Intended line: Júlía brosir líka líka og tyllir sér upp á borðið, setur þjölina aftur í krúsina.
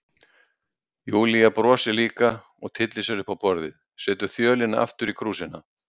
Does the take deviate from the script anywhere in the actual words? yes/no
yes